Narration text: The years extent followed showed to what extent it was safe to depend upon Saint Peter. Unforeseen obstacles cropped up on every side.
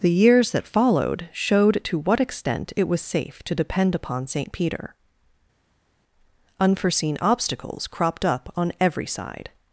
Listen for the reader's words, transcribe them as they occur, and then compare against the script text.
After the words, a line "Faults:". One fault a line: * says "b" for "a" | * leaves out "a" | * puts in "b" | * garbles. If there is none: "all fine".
The years that followed showed to what extent it was safe to depend upon Saint Peter. Unforeseen obstacles cropped up on every side.
Faults:
* says "that" for "extent"